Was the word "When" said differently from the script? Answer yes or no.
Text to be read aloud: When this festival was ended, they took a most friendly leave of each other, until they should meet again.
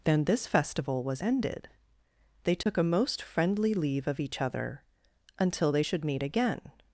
yes